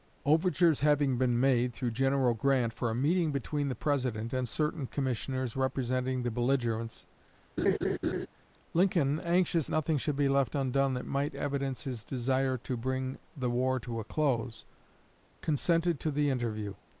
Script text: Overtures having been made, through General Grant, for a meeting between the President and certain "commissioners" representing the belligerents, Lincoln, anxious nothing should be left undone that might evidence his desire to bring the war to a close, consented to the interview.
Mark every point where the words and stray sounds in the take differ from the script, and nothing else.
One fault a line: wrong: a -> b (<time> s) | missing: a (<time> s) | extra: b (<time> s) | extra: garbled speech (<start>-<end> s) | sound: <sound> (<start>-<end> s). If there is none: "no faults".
sound: laugh (7.6-8.3 s)